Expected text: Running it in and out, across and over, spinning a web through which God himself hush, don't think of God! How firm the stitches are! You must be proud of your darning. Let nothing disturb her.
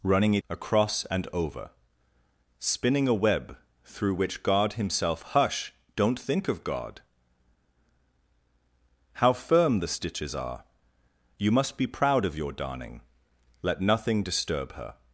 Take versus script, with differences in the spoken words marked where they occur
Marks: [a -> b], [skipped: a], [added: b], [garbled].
Running it [skipped: in and out,] across and over, spinning a web through which God himself hush, don't think of God! How firm the stitches are! You must be proud of your darning. Let nothing disturb her.